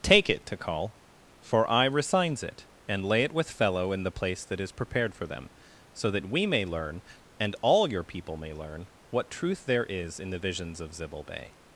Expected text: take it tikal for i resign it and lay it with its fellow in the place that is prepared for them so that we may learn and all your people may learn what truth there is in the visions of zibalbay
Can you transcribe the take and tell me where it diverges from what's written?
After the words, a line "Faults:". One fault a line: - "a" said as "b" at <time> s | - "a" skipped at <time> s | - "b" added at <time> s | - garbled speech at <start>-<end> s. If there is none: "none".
take it tikal for i resigns it and lay it with fellow in the place that is prepared for them so that we may learn and all your people may learn what truth there is in the visions of zibalbay
Faults:
- "resign" said as "resigns" at 1.9 s
- "its" skipped at 3.5 s